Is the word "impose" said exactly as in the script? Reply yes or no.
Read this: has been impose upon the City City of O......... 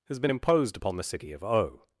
no